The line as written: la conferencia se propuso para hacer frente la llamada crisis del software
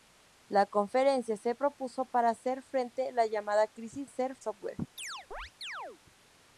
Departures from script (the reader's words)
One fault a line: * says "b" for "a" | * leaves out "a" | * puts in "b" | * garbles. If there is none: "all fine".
* says "hacer" for "del"